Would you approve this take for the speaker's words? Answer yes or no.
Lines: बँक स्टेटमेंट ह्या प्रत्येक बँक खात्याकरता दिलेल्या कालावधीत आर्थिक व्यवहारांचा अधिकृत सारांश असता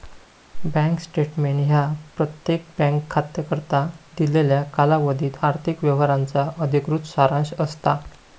yes